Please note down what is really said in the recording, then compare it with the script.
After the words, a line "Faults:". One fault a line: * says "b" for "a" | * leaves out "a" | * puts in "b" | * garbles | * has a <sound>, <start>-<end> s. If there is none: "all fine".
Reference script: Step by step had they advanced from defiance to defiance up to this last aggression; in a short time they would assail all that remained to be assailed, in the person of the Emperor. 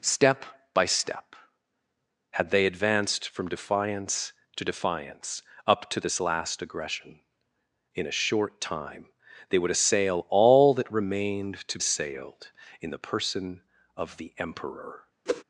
Step by step had they advanced from defiance to defiance up to this last aggression; in a short time they would assail all that remained to assailed, in the person of the Emperor.
Faults:
* leaves out "be"
* has a whoosh, 15.3-15.4 s